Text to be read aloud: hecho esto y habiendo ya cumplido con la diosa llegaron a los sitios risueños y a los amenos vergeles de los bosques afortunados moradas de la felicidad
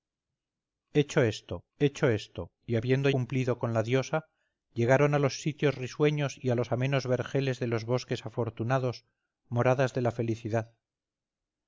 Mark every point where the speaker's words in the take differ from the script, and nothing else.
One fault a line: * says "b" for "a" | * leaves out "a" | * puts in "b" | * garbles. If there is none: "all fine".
* puts in "hecho esto"
* leaves out "ya"